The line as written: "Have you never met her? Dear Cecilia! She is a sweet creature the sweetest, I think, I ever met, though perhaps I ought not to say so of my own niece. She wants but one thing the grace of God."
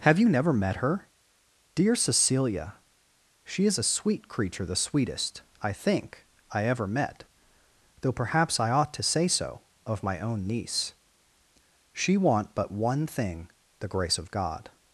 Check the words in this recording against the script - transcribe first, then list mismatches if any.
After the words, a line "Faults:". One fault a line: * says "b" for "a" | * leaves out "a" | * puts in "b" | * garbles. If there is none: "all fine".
"Have you never met her? Dear Cecilia! She is a sweet creature the sweetest, I think, I ever met, though perhaps I ought to say so of my own niece. She want but one thing the grace of God."
Faults:
* leaves out "not"
* says "want" for "wants"